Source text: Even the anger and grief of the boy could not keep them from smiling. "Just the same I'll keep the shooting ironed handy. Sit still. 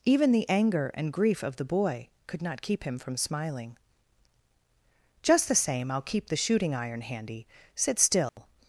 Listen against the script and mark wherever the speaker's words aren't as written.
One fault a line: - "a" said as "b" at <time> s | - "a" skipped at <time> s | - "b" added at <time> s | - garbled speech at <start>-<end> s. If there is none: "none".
- "them" said as "him" at 2.8 s
- "ironed" said as "iron" at 6.7 s